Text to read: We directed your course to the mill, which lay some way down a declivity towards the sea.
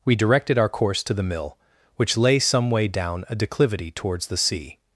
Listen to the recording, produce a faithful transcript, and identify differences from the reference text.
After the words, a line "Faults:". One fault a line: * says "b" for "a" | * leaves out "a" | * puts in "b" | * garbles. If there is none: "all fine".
We directed our course to the mill, which lay some way down a declivity towards the sea.
Faults:
* says "our" for "your"